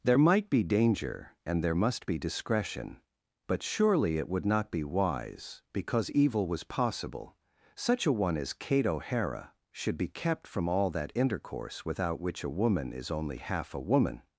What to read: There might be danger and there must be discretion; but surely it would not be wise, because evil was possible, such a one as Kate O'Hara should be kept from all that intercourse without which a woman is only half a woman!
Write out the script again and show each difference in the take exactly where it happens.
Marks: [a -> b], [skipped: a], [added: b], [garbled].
There might be danger and there must be discretion; but surely it would not be wise, because evil was possible, such a one as Kate O'Hara should be kept from all that intercourse without which a woman is only half a woman!